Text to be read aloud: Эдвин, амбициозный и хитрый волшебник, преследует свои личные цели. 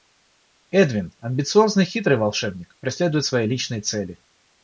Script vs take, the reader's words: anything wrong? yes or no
no